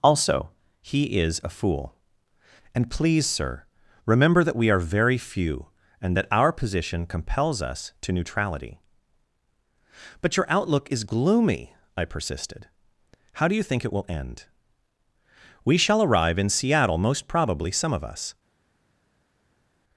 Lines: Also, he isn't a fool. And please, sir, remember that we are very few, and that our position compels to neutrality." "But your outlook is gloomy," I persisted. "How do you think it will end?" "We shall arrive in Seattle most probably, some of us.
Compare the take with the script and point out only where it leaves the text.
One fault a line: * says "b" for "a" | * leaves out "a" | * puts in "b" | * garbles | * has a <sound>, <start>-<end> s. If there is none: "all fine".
* says "is" for "isn't"
* puts in "us"